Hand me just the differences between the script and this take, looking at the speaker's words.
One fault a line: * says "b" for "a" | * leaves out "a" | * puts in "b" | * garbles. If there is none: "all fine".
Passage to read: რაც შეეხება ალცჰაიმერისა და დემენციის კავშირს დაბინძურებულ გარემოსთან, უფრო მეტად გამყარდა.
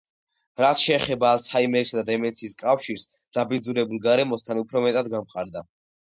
all fine